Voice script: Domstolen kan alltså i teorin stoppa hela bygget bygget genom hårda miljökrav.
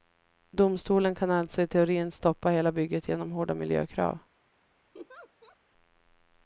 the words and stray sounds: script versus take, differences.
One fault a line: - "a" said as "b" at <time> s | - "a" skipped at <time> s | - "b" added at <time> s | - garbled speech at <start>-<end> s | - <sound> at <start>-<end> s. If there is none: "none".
- "bygget" skipped at 3.1 s
- laugh at 4.9-5.6 s